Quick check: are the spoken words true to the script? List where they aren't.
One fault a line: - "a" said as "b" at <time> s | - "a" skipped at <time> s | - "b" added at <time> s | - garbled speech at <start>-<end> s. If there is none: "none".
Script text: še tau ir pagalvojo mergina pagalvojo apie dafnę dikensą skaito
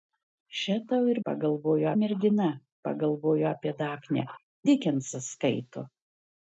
none